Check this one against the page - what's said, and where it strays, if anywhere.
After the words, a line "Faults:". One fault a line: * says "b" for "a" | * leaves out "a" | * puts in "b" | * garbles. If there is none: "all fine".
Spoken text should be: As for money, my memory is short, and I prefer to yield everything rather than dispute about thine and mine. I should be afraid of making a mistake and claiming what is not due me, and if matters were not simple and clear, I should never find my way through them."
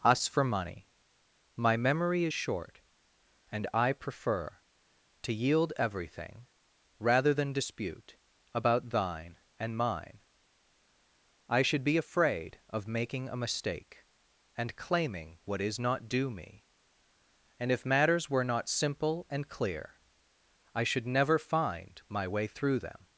Us for money, my memory is short, and I prefer to yield everything rather than dispute about thine and mine. I should be afraid of making a mistake and claiming what is not due me, and if matters were not simple and clear, I should never find my way through them."
Faults:
* says "Us" for "As"